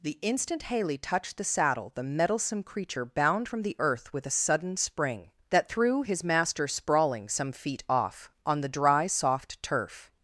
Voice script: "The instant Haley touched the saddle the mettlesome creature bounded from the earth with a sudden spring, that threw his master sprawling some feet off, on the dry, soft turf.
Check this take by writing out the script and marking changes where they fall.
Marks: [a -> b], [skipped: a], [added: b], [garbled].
"The instant Haley touched the saddle the mettlesome creature [bounded -> bound] from the earth with a sudden spring, that threw his master sprawling some feet off, on the dry, soft turf.